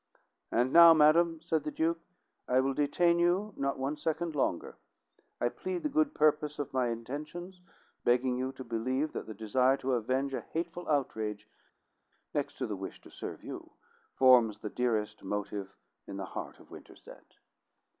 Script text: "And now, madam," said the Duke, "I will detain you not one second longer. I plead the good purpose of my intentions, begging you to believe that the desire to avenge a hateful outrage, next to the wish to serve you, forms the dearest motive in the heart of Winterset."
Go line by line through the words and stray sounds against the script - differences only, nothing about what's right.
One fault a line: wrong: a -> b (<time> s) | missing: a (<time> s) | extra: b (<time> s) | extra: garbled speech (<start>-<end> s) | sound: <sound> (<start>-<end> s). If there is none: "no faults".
no faults